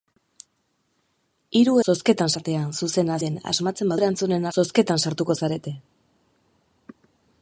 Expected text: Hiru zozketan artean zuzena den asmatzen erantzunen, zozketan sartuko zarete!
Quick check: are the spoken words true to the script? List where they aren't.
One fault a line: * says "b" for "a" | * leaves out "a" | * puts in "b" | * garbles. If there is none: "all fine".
all fine